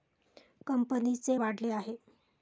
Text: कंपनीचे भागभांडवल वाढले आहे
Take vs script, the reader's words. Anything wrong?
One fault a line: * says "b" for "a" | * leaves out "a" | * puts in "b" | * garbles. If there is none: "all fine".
* leaves out "भागभांडवल"